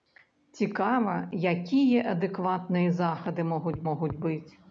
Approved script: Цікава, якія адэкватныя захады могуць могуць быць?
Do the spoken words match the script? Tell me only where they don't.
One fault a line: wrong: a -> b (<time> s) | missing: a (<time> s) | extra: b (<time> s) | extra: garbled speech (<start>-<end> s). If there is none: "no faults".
no faults